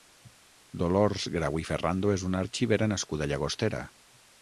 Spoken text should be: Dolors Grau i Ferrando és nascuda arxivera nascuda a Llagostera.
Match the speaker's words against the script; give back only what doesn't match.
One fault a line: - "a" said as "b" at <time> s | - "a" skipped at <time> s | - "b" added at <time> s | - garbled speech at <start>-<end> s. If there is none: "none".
- "nascuda" said as "una" at 2.3 s